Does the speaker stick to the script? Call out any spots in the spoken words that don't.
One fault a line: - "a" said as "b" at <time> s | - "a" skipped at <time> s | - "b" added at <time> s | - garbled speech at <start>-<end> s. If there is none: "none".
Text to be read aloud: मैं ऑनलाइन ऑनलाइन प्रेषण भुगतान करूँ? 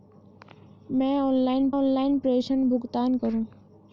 none